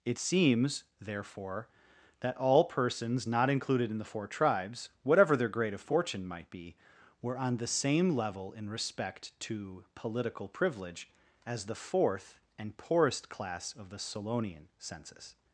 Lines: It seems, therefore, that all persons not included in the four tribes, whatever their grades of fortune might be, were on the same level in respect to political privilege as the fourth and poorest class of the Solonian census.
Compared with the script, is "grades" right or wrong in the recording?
wrong